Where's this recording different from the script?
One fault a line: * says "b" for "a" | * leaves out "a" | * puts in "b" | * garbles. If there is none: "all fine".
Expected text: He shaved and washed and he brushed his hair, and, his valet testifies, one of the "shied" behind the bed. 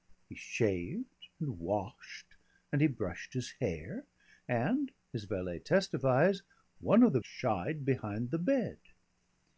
all fine